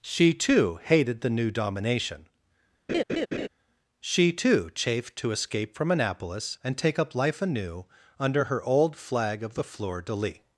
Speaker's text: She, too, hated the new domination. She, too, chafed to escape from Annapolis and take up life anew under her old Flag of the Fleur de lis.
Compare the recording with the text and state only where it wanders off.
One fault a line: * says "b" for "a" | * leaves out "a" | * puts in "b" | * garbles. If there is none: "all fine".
all fine